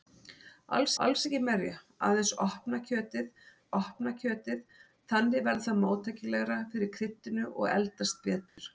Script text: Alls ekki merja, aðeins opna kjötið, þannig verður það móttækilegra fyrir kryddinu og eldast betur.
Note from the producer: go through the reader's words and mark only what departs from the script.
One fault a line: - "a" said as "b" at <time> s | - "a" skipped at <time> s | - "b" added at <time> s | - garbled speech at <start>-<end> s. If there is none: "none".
- "alls" added at 1.1 s
- "opna kjötið" added at 3.8 s